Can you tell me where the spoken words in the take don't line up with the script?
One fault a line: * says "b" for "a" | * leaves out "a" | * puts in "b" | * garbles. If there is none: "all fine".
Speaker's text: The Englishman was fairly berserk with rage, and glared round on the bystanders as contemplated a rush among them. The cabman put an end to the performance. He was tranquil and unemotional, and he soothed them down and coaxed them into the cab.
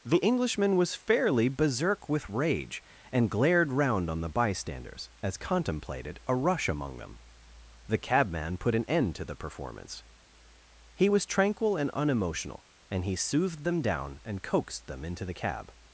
all fine